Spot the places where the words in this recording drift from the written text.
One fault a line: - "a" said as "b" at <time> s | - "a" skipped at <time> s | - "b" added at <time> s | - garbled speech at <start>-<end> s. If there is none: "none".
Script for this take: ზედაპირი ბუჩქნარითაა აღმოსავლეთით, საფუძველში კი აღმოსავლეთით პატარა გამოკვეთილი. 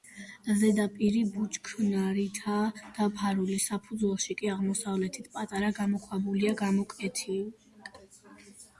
- "აღმოსავლეთით" said as "დაფარული" at 3.0 s
- "გამოქვაბულია" added at 5.8 s